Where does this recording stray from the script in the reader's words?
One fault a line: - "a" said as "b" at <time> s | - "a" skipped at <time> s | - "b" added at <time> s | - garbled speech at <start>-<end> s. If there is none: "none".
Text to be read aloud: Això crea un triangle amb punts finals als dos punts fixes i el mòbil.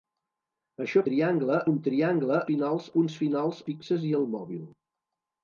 - "crea" said as "triangle" at 1.1 s
- "amb" said as "finals" at 2.5 s
- "als dos punts" skipped at 3.6 s